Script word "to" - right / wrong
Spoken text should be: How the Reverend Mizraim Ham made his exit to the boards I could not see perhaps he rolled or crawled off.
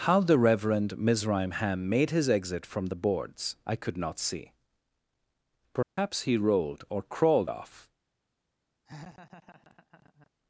wrong